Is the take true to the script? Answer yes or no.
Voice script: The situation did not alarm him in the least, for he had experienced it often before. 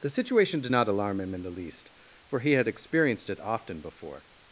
yes